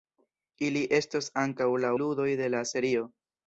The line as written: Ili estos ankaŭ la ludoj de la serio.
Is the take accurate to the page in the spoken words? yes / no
yes